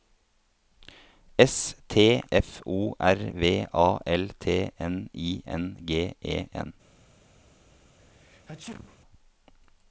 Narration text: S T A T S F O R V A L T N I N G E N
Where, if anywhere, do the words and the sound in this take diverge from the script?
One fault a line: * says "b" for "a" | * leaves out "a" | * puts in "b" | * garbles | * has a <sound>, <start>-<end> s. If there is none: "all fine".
* leaves out "A T S"
* has a sneeze, 8.0-9.0 s